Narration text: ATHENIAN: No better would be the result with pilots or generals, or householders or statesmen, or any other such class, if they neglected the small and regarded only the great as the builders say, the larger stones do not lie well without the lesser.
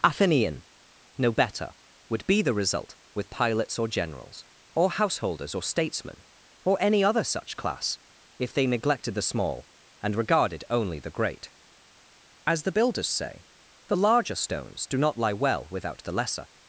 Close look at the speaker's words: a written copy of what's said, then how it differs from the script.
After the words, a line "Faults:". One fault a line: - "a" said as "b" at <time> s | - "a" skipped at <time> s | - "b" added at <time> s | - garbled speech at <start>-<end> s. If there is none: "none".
ATHENIAN: No better would be the result with pilots or generals, or householders or statesmen, or any other such class, if they neglected the small and regarded only the great as the builders say, the larger stones do not lie well without the lesser.
Faults:
none